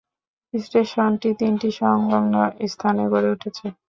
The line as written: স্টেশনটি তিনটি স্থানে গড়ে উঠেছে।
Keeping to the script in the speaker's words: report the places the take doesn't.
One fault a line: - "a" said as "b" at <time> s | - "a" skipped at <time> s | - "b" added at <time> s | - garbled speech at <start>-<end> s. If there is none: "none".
- "সংলগ্ন" added at 1.8 s